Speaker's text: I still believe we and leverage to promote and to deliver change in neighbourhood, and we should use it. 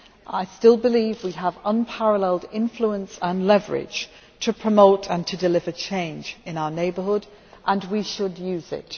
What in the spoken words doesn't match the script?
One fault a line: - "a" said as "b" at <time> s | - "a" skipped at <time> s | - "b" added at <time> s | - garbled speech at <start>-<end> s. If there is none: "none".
- "have unparalleled influence" added at 1.3 s
- "our" added at 6.6 s